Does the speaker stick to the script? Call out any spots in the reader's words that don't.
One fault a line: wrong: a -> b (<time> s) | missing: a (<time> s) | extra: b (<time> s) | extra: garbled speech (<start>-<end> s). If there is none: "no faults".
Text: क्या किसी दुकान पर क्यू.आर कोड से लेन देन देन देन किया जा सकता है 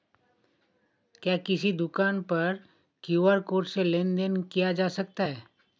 missing: देन (4.4 s)